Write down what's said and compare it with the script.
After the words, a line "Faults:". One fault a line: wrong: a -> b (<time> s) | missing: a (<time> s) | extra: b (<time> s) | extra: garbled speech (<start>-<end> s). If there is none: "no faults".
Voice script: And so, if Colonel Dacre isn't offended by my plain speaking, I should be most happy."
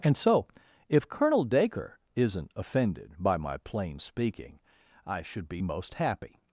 And so, if Colonel Dacre isn't offended by my plain speaking, I should be most happy."
Faults:
no faults